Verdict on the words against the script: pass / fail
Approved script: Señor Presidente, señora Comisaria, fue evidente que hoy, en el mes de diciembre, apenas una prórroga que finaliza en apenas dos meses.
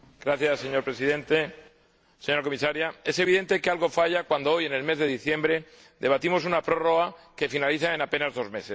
fail